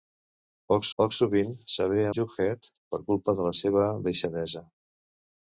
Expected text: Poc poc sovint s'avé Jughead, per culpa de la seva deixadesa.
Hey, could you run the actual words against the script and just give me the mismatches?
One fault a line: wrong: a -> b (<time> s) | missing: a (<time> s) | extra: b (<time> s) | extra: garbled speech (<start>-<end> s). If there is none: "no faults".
no faults